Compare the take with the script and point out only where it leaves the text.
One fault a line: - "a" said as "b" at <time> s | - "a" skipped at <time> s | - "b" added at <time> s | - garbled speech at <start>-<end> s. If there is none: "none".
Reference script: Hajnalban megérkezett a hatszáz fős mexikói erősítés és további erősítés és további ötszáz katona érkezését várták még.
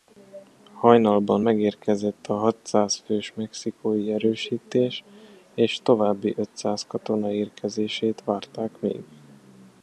- "erősítés és további" skipped at 6.3 s